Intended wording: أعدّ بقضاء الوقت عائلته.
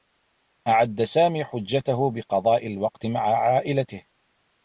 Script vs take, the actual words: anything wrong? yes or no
yes